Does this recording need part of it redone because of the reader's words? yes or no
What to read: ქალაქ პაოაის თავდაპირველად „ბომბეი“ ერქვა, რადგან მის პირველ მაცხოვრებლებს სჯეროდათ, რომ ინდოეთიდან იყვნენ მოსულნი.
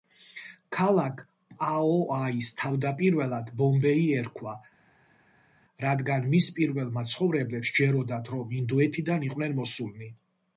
no